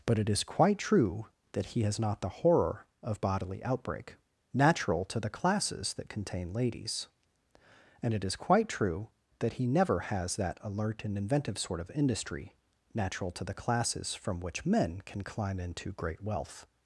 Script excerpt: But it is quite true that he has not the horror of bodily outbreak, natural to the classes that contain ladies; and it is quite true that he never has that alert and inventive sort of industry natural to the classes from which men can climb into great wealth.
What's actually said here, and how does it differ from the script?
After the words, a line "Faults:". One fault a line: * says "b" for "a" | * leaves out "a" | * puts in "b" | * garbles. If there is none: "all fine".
But it is quite true that he has not the horror of bodily outbreak, natural to the classes that contain ladies; and it is quite true that he never has that alert and inventive sort of industry natural to the classes from which men can climb into great wealth.
Faults:
all fine